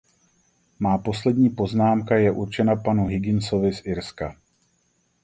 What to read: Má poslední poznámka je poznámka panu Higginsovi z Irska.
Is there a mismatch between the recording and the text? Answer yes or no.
yes